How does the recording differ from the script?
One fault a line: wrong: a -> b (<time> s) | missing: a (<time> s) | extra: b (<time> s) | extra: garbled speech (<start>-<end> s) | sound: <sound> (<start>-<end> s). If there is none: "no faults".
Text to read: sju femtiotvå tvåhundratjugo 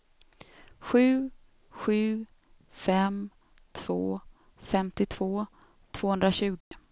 extra: sju fem två (1.7 s)
sound: dropout (6.6-6.7 s)